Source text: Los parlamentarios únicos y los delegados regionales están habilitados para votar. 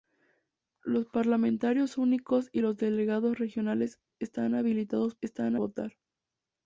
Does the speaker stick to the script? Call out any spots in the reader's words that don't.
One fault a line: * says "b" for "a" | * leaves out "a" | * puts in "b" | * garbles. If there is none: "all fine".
* says "están" for "para"